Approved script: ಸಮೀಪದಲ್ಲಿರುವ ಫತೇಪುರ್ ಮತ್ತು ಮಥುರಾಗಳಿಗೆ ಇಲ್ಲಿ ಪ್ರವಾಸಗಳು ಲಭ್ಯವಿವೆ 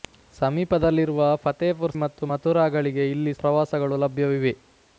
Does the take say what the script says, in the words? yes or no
yes